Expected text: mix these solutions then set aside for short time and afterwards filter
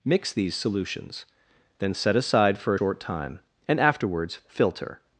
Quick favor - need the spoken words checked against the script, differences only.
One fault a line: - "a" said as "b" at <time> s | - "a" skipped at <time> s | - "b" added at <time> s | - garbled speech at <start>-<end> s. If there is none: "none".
none